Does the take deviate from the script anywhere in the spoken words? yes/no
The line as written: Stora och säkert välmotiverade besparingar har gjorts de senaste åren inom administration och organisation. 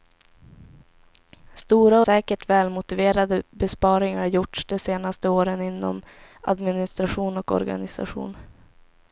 yes